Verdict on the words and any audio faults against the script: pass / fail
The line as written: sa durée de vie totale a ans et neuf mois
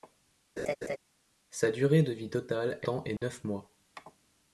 fail